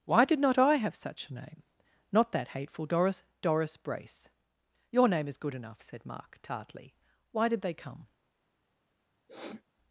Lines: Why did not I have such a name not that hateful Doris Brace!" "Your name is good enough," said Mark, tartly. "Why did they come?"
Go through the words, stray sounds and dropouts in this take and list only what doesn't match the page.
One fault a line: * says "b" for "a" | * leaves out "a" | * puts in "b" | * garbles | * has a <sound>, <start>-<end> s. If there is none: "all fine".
* puts in "Doris"
* has a sniff, 9.3-9.6 s